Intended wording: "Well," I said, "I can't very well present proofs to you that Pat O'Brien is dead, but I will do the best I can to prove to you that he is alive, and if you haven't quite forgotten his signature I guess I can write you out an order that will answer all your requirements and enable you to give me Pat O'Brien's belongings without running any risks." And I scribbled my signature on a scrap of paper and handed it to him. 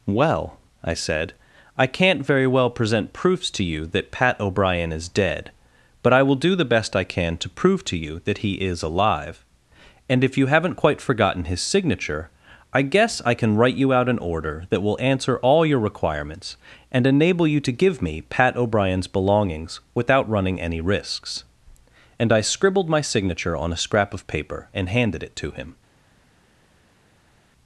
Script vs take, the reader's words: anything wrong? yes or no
no